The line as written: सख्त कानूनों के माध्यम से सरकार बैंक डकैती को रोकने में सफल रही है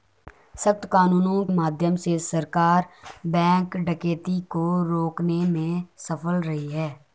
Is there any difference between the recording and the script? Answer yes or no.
yes